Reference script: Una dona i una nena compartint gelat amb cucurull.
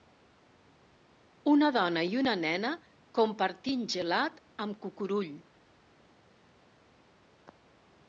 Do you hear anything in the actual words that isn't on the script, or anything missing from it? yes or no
no